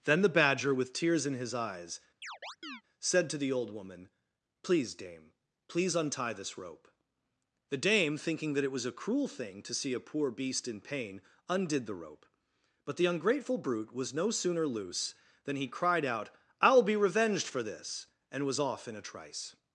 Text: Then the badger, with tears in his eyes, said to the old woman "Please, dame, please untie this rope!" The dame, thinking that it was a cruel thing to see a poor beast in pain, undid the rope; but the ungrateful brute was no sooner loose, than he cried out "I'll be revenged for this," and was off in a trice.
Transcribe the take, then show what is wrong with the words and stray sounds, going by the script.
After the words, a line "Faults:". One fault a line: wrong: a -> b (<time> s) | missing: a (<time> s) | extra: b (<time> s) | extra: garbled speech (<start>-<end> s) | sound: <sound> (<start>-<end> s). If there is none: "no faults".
Then the badger, with tears in his eyes, said to the old woman "Please, dame, please untie this rope!" The dame, thinking that it was a cruel thing to see a poor beast in pain, undid the rope; but the ungrateful brute was no sooner loose, than he cried out "I'll be revenged for this," and was off in a trice.
Faults:
sound: chirp (2.2-2.8 s)